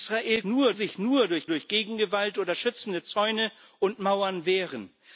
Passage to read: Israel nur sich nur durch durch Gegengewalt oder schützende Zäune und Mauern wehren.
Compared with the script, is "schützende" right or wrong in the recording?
right